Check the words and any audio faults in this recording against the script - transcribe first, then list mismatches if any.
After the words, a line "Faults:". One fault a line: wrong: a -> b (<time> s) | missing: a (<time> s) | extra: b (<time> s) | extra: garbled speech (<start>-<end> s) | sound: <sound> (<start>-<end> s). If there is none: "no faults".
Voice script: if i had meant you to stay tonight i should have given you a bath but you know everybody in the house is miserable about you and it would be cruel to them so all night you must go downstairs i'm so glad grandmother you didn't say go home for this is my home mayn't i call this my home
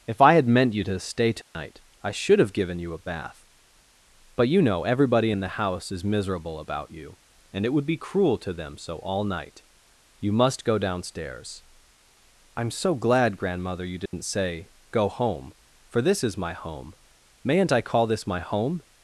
if i had meant you to stay tonight i should have given you a bath but you know everybody in the house is miserable about you and it would be cruel to them so all night you must go downstairs i'm so glad grandmother you didn't say go home for this is my home mayn't i call this my home
Faults:
sound: dropout (1.4-1.5 s)
sound: dropout (14.1-14.1 s)